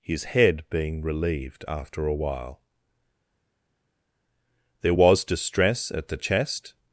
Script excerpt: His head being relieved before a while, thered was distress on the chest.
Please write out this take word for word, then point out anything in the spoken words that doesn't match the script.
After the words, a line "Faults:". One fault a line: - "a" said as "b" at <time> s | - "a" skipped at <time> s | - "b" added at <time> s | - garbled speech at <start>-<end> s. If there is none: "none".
His head being relieved after a while, there was distress at the chest.
Faults:
- "before" said as "after" at 1.7 s
- "thered" said as "there" at 4.8 s
- "on" said as "at" at 5.9 s